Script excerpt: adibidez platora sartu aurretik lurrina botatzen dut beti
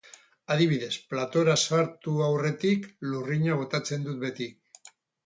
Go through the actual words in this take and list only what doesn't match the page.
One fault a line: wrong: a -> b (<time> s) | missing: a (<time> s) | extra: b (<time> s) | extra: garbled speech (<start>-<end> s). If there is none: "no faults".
no faults